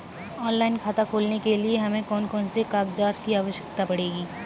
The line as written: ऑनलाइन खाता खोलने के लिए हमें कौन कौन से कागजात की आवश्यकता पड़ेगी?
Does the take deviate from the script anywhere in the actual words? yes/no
no